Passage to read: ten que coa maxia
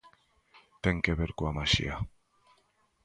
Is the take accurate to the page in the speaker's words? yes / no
no